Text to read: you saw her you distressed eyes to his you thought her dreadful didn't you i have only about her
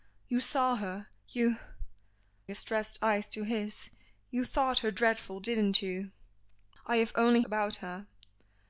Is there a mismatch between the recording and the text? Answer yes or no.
no